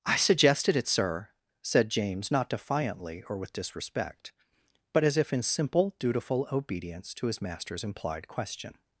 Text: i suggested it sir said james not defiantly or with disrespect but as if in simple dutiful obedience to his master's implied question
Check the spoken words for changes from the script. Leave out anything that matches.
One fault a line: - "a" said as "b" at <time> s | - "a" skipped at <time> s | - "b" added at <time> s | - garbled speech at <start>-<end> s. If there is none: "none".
none